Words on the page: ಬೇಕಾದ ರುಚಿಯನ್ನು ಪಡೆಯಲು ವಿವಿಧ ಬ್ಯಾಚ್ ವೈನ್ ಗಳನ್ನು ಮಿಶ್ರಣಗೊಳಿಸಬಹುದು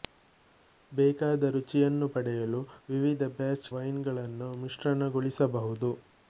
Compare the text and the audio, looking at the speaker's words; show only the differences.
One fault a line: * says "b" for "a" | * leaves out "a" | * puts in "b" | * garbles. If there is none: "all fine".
all fine